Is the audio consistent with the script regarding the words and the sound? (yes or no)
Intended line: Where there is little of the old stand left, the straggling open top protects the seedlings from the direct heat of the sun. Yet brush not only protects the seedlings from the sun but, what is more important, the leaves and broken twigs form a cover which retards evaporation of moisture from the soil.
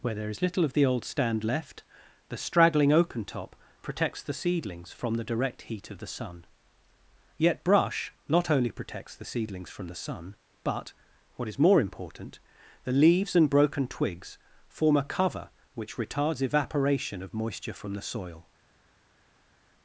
no